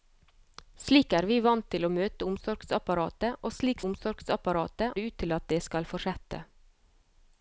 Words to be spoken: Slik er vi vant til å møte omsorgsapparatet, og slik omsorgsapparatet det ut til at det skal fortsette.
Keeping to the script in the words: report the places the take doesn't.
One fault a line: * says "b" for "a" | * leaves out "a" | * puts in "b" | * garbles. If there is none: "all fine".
all fine